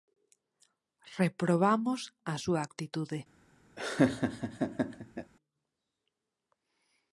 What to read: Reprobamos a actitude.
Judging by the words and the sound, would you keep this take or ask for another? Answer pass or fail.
fail